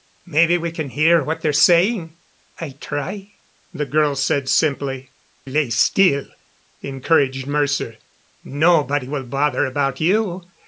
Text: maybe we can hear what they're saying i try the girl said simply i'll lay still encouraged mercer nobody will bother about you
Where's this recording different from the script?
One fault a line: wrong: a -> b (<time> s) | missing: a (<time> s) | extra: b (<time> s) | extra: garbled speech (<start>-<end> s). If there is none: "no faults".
missing: i'll (5.1 s)